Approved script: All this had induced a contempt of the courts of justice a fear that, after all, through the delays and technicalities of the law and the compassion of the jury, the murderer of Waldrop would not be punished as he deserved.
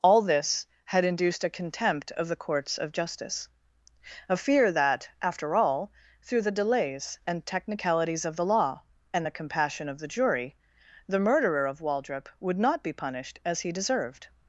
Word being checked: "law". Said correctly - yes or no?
yes